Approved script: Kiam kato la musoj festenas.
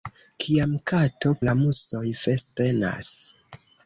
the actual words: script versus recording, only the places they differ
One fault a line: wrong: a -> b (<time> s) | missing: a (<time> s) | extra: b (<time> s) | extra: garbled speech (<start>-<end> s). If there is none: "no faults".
no faults